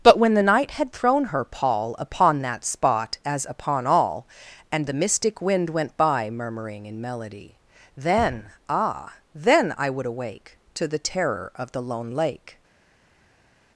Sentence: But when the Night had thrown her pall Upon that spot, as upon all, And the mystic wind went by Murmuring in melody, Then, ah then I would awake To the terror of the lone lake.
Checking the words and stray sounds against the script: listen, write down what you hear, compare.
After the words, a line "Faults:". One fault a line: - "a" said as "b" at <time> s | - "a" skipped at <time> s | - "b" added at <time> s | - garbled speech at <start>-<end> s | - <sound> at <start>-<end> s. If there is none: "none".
But when the Night had thrown her pall Upon that spot, as upon all, And the mystic wind went by Murmuring in melody, Then, ah then I would awake To the terror of the lone lake.
Faults:
none